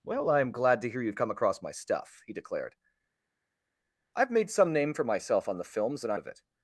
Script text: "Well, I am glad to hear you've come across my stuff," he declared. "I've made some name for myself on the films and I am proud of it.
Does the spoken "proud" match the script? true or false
false